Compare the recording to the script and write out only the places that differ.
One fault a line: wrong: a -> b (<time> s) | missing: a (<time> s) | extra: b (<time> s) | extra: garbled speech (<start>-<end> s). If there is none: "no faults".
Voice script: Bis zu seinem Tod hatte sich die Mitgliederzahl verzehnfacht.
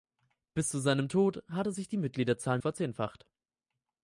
no faults